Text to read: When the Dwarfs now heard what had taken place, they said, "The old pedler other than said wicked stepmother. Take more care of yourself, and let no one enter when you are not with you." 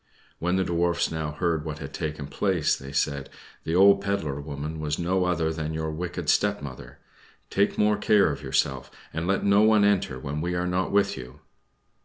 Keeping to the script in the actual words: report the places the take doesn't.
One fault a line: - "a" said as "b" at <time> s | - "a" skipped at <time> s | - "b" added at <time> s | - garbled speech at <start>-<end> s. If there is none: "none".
- "woman was no" added at 4.4 s
- "said" said as "your" at 5.7 s
- "you" said as "we" at 10.4 s